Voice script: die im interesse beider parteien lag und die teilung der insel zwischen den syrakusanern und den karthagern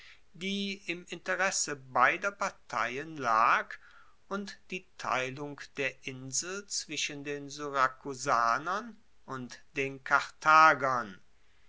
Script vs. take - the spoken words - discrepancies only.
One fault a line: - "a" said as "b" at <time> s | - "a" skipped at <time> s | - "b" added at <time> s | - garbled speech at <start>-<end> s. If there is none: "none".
none